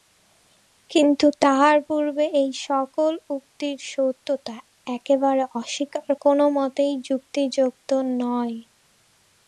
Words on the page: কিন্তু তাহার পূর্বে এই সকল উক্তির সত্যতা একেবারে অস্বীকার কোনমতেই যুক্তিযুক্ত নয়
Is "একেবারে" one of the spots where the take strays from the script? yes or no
no